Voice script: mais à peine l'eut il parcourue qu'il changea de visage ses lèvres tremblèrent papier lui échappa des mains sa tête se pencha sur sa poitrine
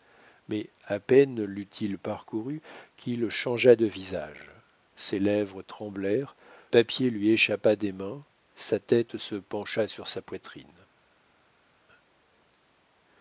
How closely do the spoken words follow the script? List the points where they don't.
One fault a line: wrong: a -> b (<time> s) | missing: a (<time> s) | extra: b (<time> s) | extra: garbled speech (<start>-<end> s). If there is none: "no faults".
no faults